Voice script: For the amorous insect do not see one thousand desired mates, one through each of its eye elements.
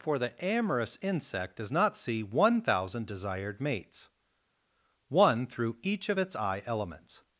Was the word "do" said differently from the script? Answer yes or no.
yes